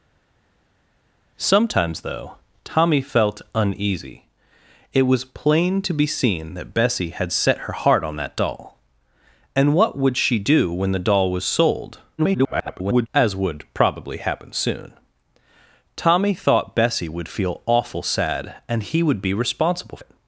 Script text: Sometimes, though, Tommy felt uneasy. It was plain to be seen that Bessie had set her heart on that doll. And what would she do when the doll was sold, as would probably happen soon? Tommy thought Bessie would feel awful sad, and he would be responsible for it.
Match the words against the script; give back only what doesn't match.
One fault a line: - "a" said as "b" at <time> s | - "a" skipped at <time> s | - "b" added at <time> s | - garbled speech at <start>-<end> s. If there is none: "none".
- garbled speech at 12.2-13.1 s
- "for" skipped at 20.0 s